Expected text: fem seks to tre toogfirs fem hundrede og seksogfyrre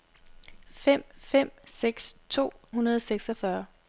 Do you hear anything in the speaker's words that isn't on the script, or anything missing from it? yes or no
yes